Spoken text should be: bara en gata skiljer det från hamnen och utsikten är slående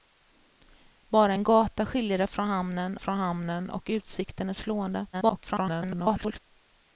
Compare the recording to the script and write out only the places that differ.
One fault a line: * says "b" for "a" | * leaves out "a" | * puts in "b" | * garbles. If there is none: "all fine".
* puts in "från hamnen"
* garbles